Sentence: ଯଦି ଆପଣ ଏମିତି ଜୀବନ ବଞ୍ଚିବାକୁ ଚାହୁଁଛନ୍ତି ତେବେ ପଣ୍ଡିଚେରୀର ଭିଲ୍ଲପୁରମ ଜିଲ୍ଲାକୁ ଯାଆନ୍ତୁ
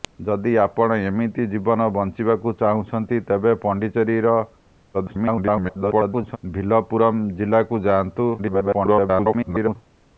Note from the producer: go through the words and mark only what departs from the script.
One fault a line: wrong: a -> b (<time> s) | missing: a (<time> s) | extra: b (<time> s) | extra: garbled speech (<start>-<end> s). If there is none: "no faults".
extra: garbled speech (4.9-6.4 s)
extra: garbled speech (8.4-9.8 s)